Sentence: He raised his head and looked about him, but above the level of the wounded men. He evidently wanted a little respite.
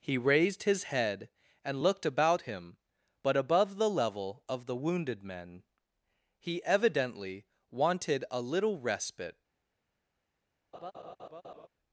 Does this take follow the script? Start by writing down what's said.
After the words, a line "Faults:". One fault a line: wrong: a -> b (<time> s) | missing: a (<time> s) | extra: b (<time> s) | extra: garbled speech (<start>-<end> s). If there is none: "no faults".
He raised his head and looked about him, but above the level of the wounded men. He evidently wanted a little respite.
Faults:
no faults